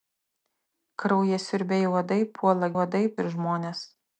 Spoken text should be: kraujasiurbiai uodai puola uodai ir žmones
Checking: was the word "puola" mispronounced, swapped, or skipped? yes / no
no